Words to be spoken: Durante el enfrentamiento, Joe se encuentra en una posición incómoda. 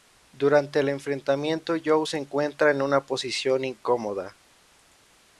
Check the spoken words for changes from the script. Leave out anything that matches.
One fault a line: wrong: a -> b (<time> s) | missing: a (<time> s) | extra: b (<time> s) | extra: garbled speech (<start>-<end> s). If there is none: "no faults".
no faults